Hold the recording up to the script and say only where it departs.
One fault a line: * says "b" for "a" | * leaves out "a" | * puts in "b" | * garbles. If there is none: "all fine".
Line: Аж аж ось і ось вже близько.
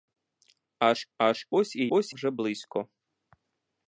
all fine